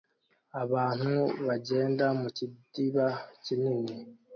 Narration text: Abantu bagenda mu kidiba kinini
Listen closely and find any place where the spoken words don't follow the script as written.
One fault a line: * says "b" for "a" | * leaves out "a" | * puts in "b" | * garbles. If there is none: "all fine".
all fine